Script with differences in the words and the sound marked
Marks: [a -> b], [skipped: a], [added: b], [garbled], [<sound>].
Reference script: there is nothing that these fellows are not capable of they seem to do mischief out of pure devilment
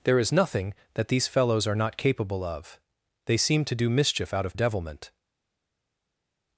there is nothing that these fellows are not capable of they seem to do mischief out of [skipped: pure] devilment